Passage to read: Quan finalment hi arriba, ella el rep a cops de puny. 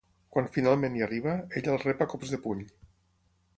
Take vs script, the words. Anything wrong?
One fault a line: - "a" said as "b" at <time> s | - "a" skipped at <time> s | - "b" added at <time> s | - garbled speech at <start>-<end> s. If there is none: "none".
none